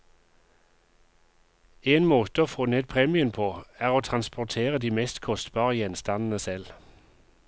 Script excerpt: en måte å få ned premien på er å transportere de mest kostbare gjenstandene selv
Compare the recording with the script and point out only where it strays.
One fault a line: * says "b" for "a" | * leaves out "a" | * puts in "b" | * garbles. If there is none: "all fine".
all fine